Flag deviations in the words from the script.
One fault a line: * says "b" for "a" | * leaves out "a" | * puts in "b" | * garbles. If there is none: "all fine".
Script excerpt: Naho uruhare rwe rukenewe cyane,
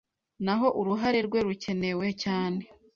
all fine